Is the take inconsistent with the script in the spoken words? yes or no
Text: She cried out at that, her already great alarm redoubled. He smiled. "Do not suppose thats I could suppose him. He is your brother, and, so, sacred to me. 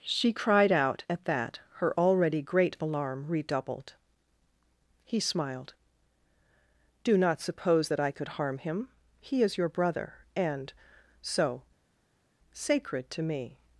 yes